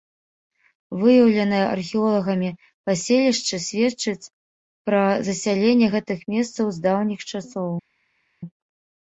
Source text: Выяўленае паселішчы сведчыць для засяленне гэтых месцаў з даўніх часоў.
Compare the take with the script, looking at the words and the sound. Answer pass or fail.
fail